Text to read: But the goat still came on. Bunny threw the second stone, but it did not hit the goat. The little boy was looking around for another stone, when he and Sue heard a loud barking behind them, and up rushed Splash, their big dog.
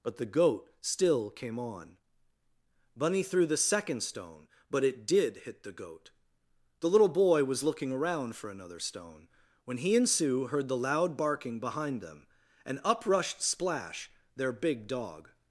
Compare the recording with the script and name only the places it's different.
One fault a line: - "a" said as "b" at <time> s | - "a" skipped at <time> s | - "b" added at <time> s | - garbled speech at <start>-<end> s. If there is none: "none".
- "not" skipped at 5.4 s
- "a" said as "the" at 10.7 s